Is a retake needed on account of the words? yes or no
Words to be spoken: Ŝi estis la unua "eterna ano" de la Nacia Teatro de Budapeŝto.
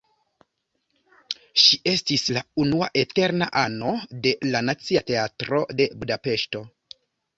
no